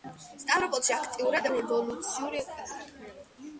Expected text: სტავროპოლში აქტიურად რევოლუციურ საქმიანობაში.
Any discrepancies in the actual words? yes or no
no